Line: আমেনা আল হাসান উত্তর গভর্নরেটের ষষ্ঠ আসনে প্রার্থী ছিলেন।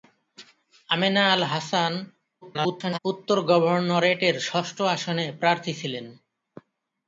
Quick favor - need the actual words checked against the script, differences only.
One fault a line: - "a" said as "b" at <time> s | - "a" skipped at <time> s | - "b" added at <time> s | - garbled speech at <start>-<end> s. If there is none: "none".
- garbled speech at 2.4-3.0 s